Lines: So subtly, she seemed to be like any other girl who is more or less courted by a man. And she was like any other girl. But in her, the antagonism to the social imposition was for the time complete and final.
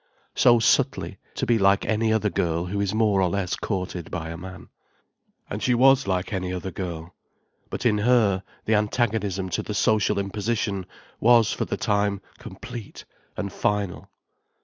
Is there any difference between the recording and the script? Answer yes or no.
yes